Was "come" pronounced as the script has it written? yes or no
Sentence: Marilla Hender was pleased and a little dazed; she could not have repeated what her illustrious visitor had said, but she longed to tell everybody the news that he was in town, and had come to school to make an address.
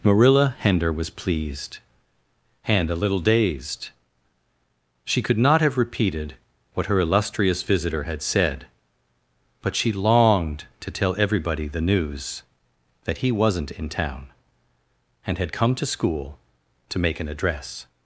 yes